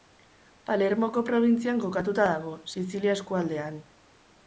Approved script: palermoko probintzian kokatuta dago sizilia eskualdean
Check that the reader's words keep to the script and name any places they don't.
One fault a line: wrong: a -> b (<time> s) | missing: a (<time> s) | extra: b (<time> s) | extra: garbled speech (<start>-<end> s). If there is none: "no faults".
no faults